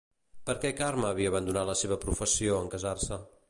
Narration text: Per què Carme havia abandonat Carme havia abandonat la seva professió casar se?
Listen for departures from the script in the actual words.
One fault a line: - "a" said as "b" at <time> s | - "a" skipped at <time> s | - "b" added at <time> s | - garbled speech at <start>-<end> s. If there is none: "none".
- "Carme havia abandonat" skipped at 1.7 s
- "en" added at 2.6 s